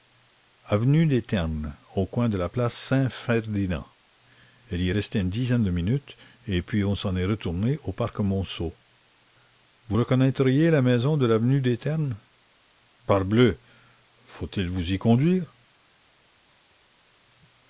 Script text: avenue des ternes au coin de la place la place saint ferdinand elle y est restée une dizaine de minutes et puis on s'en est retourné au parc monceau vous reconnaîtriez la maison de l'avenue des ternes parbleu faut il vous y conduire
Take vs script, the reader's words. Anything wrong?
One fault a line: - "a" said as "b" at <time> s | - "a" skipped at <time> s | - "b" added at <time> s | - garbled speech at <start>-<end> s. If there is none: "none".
- "la place" skipped at 2.7 s